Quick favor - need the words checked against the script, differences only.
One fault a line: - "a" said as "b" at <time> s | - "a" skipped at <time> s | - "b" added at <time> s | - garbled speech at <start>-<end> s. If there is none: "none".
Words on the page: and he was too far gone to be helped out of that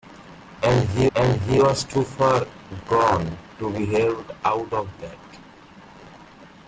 - "and he" added at 1.2 s